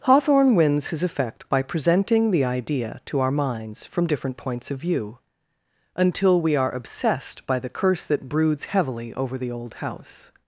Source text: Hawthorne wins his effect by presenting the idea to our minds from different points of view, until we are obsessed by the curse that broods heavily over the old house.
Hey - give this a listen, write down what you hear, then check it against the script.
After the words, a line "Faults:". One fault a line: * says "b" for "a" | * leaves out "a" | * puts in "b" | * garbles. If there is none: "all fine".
Hawthorne wins his effect by presenting the idea to our minds from different points of view, until we are obsessed by the curse that broods heavily over the old house.
Faults:
all fine